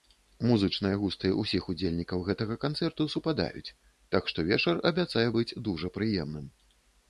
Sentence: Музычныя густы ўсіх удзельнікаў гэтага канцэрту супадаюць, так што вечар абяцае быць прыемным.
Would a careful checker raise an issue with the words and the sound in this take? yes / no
yes